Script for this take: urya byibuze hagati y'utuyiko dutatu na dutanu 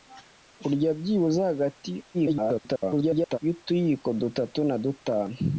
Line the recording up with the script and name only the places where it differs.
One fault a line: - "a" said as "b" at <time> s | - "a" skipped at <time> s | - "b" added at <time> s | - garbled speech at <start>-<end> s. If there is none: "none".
- garbled speech at 2.1-3.4 s